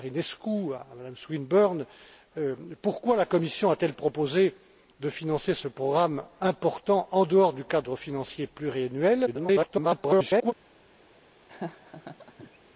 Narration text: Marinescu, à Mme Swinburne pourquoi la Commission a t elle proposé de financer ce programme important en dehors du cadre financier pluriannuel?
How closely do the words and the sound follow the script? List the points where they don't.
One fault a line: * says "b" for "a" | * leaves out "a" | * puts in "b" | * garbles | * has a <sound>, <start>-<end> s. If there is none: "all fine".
* garbles
* has a laugh, 11.5-12.6 s